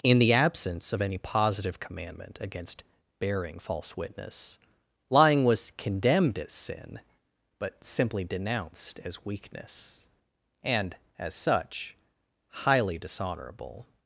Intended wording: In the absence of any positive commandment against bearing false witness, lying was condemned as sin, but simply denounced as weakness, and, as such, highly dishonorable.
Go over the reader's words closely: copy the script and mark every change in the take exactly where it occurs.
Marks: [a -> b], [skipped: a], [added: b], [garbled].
In the absence of any positive commandment against bearing false witness, lying was condemned as sin, but simply denounced as weakness, and, as such, highly dishonorable.